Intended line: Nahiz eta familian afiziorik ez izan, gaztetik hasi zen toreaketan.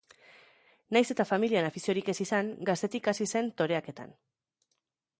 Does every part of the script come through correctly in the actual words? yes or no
yes